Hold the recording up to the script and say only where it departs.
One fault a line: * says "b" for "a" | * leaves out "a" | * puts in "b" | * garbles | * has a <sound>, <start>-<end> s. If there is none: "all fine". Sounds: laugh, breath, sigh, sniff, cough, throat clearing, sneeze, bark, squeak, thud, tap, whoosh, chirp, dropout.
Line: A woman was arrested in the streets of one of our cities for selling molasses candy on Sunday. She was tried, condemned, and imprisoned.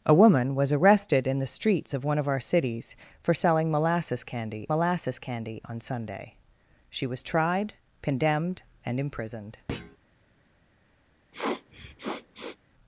* puts in "molasses candy"
* has a thud, 9.7-10.0 s
* has a sniff, 11.3-12.6 s